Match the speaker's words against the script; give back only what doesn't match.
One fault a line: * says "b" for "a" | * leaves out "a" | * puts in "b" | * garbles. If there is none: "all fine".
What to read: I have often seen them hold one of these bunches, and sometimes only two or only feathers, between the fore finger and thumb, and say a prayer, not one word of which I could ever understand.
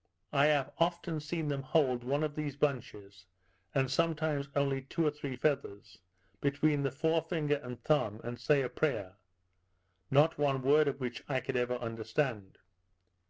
* says "three" for "only"